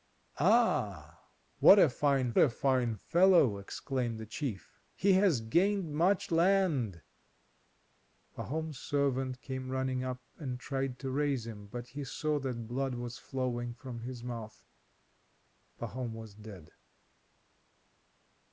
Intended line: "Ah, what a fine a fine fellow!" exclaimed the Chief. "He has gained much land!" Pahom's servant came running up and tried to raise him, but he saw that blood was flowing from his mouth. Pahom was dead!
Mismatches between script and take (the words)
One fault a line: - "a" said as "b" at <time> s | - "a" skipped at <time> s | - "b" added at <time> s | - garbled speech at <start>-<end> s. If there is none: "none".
none